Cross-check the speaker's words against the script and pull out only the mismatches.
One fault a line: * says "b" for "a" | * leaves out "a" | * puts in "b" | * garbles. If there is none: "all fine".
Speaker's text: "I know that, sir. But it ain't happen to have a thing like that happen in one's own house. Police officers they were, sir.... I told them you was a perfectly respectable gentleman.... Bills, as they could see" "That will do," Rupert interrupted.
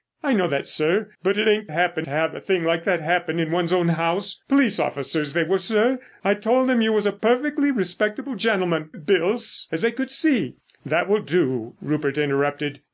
all fine